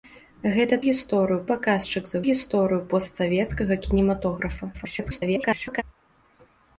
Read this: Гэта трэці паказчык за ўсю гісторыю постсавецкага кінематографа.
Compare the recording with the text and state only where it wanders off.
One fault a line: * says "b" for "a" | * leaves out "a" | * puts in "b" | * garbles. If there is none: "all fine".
* says "гісторыю" for "трэці"
* leaves out "ўсю"
* garbles